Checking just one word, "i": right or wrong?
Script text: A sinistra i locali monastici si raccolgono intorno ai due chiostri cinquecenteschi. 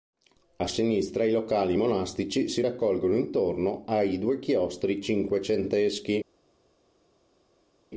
right